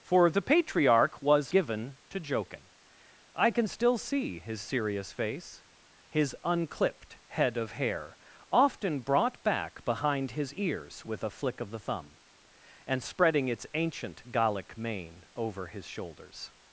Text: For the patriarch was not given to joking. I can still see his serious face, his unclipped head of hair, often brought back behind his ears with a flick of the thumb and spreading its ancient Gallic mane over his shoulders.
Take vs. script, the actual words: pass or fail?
fail